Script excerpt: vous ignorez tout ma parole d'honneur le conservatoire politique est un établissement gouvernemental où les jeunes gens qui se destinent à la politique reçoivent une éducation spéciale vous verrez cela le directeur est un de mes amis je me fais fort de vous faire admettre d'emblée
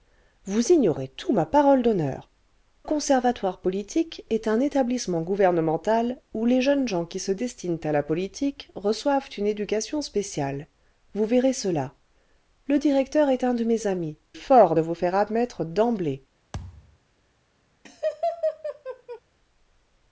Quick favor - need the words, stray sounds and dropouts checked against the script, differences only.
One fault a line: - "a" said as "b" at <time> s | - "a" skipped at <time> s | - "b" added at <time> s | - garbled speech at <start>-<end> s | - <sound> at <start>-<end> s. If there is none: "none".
- "le" skipped at 2.3 s
- "je me fais" skipped at 14.2 s
- thud at 16.5-17.0 s
- laugh at 17.9-19.2 s